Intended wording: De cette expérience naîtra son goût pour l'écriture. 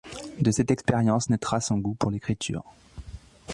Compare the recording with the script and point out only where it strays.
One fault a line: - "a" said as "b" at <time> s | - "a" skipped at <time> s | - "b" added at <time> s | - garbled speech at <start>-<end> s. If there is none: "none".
none